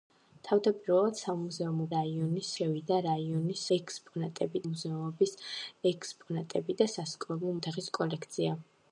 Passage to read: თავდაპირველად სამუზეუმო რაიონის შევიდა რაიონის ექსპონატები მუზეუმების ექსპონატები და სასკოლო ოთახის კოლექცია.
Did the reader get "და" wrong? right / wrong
right